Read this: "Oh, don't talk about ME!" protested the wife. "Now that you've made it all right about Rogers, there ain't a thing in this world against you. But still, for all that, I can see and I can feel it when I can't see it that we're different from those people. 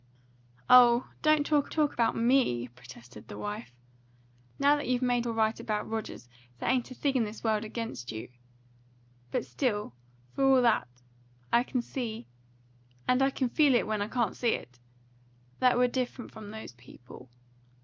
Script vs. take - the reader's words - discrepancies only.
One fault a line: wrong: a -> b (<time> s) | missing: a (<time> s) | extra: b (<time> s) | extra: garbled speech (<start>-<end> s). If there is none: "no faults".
extra: talk (1.7 s)
missing: it (5.3 s)